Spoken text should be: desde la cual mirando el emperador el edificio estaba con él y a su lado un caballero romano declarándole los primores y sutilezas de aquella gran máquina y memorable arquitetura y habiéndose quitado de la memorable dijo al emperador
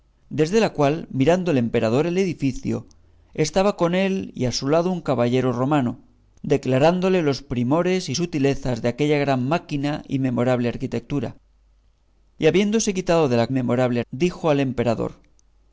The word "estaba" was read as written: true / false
true